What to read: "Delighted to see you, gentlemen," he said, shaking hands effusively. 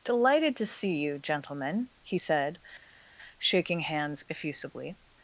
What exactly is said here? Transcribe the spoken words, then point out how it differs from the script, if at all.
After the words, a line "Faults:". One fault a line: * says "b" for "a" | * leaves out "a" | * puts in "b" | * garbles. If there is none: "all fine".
"Delighted to see you, gentlemen," he said, shaking hands effusively.
Faults:
all fine